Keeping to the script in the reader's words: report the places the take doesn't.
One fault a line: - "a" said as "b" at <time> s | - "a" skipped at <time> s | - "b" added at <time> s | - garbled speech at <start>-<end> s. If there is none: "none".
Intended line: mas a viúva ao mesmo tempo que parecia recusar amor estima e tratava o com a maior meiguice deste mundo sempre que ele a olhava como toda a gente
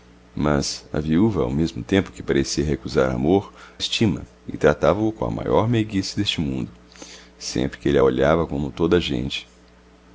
none